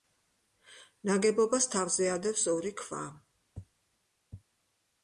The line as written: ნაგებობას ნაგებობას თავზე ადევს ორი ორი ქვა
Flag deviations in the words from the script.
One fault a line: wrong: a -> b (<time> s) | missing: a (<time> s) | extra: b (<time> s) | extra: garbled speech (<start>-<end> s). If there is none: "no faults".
missing: ნაგებობას (1.7 s)
missing: ორი (2.7 s)